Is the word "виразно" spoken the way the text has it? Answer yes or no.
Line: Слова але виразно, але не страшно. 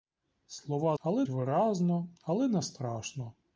yes